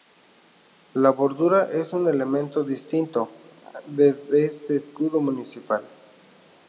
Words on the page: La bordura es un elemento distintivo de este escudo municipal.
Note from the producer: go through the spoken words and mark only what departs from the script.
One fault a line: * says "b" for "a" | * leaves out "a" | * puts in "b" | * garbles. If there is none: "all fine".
all fine